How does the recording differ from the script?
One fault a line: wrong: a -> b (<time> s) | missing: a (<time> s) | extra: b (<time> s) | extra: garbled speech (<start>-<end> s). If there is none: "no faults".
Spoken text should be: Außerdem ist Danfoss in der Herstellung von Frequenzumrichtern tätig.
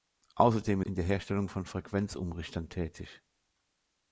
missing: ist Danfoss (0.8 s)